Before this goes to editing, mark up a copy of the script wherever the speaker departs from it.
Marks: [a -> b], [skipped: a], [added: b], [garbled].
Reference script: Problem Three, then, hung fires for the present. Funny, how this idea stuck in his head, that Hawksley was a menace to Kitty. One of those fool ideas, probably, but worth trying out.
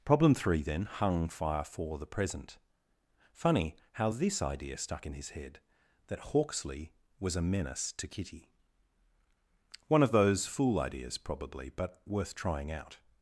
Problem Three, then, hung [fires -> fire] for the present. Funny, how this idea stuck in his head, that Hawksley was a menace to Kitty. One of those fool ideas, probably, but worth trying out.